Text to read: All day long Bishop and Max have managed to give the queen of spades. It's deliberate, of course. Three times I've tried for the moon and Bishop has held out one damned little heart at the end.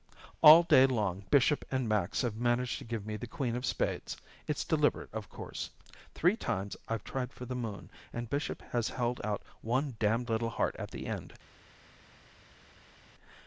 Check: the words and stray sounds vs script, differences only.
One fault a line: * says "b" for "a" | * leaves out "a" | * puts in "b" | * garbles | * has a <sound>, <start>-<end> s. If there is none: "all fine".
* puts in "me"